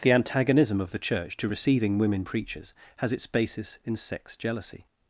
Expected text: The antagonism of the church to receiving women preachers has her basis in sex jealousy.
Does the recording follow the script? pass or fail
fail